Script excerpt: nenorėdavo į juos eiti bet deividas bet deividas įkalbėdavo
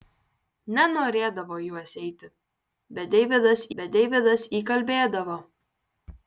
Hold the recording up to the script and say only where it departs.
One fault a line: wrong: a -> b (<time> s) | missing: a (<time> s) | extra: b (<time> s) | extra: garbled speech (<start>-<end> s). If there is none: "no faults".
no faults